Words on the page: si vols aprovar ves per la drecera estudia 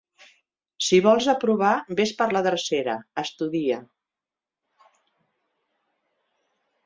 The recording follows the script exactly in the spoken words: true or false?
true